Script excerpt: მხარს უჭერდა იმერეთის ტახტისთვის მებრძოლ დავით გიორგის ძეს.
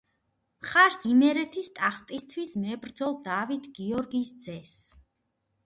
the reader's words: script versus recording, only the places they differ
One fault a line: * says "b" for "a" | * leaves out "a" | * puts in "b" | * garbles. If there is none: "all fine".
* leaves out "უჭერდა"